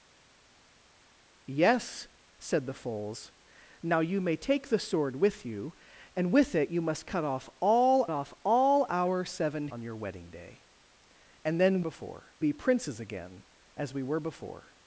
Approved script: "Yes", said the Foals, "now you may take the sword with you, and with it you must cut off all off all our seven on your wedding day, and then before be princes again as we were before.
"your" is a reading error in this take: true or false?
false